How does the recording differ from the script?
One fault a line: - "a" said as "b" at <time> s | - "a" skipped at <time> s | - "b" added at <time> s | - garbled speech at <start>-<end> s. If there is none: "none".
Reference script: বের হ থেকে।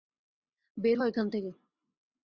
- "এখান" added at 1.0 s